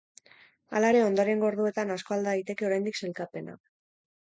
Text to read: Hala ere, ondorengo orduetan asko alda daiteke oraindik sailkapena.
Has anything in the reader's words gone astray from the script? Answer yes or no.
no